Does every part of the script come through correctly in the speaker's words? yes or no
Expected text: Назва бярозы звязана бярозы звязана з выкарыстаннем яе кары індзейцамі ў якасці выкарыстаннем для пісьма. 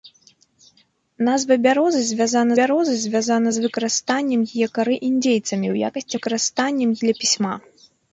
yes